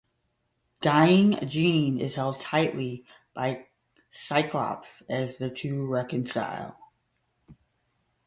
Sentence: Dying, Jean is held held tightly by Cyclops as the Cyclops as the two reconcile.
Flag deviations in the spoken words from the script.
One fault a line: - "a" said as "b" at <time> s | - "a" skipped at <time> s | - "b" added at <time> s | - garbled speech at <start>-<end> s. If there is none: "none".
- "held" skipped at 2.4 s
- "Cyclops as the" skipped at 5.5 s